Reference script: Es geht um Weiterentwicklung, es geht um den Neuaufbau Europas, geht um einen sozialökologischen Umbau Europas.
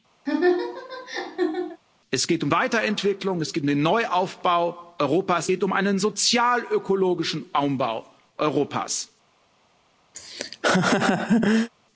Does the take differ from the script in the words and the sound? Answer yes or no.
yes